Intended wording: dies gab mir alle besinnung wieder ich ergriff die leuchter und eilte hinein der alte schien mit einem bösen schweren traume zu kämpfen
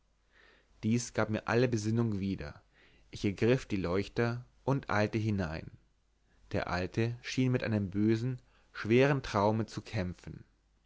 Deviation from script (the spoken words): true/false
false